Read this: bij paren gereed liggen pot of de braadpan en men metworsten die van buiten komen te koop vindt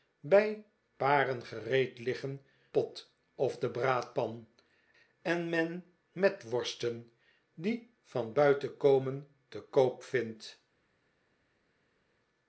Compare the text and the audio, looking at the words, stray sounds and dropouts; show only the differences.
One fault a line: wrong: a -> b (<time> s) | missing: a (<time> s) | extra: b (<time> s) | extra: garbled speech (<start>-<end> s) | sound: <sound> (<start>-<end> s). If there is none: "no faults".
no faults